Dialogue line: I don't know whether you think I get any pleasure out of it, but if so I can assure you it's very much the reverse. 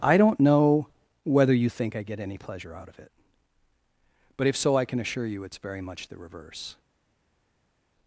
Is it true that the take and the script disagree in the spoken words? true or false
false